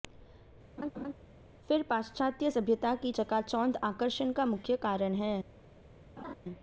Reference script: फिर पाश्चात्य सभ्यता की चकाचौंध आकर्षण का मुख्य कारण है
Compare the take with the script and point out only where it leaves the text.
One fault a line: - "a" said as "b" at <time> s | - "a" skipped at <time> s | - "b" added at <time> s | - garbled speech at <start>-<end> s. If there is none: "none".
none